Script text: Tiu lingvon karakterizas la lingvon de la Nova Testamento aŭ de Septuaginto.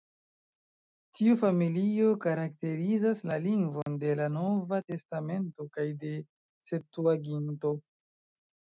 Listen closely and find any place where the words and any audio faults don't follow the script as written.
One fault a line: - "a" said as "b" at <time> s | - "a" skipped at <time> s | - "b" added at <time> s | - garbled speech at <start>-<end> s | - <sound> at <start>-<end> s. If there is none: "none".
- "lingvon" said as "familio" at 1.4 s
- dropout at 3.8-3.9 s
- "aŭ" said as "kaj" at 5.8 s